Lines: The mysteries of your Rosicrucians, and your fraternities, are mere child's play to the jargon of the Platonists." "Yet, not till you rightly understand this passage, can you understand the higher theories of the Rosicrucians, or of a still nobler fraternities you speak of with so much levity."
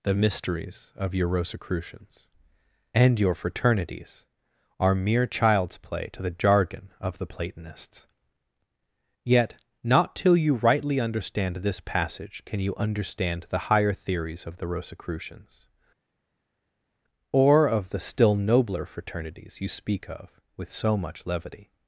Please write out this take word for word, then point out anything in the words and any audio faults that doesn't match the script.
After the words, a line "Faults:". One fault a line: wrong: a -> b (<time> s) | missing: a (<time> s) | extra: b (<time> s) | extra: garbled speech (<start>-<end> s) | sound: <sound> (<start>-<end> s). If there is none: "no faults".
The mysteries of your Rosicrucians, and your fraternities, are mere child's play to the jargon of the Platonists." "Yet, not till you rightly understand this passage, can you understand the higher theories of the Rosicrucians, or of the still nobler fraternities you speak of with so much levity."
Faults:
wrong: a -> the (17.9 s)